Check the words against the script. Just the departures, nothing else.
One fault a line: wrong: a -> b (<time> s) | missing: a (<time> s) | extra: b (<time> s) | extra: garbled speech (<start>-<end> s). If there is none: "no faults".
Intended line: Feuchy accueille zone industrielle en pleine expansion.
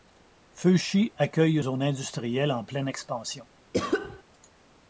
no faults